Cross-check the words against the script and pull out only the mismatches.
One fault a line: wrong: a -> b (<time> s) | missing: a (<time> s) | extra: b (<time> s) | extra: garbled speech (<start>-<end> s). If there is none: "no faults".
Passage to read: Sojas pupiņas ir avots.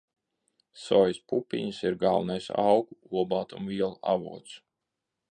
extra: galvenais augu olbaltumvielu (2.0 s)